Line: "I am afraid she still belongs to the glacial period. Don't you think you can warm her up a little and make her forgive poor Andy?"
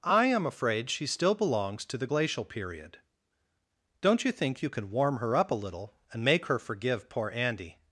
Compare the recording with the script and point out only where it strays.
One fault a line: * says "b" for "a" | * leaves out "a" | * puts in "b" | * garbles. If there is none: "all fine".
all fine